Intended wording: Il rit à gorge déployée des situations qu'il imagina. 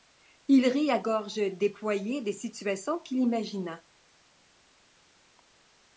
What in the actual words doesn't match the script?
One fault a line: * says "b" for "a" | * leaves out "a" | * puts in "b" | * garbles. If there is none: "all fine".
all fine